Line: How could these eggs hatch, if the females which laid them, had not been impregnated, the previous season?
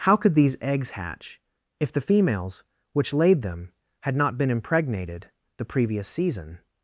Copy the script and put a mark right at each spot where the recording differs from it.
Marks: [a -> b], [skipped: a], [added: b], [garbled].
How could these eggs hatch, if the females which laid them, had not been impregnated, the previous season?